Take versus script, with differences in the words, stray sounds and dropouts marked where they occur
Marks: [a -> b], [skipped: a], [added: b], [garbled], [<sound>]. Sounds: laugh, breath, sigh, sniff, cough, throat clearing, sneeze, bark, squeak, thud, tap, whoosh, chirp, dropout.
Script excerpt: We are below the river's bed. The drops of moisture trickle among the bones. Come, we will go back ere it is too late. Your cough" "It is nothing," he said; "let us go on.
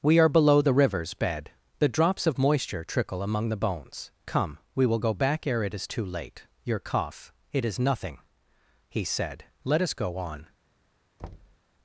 We are below the river's bed. The drops of moisture trickle among the bones. Come, we will go back ere it is too late. Your cough" "It is nothing," he said; "let us go on. [thud]